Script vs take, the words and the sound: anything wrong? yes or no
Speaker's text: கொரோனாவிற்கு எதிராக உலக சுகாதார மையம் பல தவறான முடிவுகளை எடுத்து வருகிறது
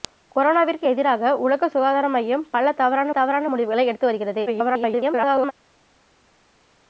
yes